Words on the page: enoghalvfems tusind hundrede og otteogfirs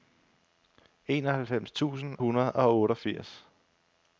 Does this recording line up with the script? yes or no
yes